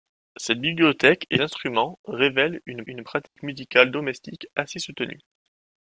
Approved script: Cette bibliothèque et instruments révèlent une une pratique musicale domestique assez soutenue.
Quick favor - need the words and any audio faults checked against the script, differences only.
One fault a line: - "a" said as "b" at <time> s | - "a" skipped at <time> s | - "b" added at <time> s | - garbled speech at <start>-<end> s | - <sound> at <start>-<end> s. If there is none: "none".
- dropout at 3.3-3.4 s